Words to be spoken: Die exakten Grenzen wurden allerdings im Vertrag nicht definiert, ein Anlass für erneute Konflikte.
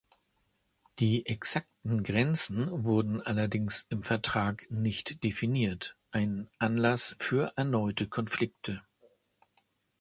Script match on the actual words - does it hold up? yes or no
yes